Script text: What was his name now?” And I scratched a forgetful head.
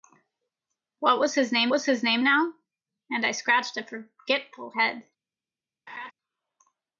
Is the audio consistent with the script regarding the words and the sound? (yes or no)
no